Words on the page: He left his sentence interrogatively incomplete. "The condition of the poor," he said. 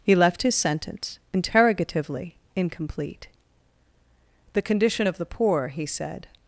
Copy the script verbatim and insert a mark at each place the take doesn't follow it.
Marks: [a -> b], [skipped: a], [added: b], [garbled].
He left his sentence interrogatively incomplete. "The condition of the poor," he said.